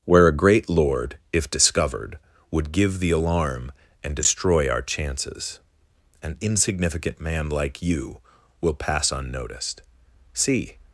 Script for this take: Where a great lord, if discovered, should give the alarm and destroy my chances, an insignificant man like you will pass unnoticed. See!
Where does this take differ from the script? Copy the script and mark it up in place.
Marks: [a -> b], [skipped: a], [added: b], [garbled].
Where a great lord, if discovered, [should -> would] give the alarm and destroy [my -> our] chances, an insignificant man like you will pass unnoticed. See!